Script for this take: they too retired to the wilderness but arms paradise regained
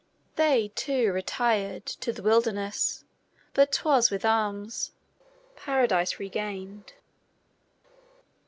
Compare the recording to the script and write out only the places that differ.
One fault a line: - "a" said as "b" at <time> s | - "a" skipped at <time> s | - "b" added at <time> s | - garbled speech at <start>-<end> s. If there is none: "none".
- "twas with" added at 3.7 s